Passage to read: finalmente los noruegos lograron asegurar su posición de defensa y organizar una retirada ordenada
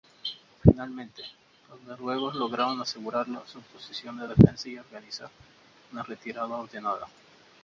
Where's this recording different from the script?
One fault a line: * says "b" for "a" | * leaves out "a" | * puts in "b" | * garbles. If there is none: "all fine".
all fine